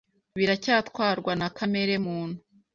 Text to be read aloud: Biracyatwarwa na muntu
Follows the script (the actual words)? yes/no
no